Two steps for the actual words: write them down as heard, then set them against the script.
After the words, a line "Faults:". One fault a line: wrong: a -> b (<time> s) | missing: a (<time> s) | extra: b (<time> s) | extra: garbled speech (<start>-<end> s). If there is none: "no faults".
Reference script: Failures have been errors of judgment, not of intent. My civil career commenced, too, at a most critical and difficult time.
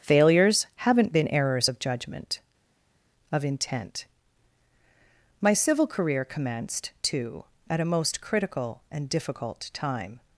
Failures haven't been errors of judgment, of intent. My civil career commenced, too, at a most critical and difficult time.
Faults:
wrong: have -> haven't (0.8 s)
missing: not (2.4 s)